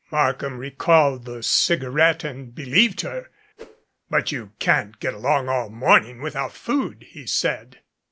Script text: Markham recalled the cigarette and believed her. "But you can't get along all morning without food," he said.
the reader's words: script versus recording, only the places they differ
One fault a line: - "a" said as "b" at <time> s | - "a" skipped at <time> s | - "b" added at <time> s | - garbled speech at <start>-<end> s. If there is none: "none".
none